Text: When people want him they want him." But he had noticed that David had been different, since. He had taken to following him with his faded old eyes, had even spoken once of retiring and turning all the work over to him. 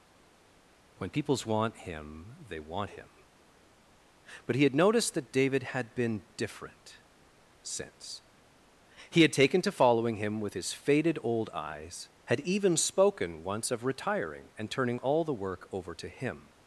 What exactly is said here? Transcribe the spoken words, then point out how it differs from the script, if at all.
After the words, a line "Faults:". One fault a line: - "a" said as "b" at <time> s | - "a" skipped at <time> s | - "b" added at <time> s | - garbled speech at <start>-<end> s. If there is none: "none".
When peoples want him they want him." But he had noticed that David had been different, since. He had taken to following him with his faded old eyes, had even spoken once of retiring and turning all the work over to him.
Faults:
- "people" said as "peoples" at 1.1 s